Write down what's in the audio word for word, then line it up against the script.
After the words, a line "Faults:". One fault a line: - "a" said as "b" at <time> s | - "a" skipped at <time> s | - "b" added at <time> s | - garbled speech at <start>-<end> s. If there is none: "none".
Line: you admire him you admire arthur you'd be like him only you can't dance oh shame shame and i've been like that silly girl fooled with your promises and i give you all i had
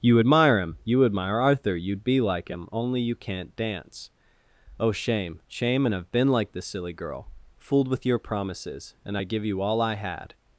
you admire him you admire arthur you'd be like him only you can't dance oh shame shame and i've been like this silly girl fooled with your promises and i give you all i had
Faults:
- "that" said as "this" at 6.5 s